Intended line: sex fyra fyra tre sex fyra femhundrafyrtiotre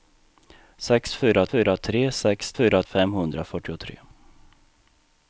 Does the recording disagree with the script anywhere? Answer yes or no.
no